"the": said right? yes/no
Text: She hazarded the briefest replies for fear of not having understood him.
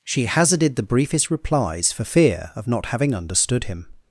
yes